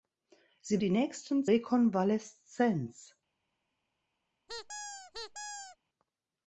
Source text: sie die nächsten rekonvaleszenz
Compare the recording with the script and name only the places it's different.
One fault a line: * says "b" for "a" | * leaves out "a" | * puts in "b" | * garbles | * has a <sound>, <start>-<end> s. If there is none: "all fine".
* has a squeak, 4.5-5.8 s